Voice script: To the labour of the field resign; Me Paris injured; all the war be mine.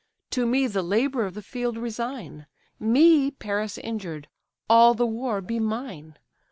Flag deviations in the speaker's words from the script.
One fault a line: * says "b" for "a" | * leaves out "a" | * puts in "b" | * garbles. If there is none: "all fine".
* puts in "me"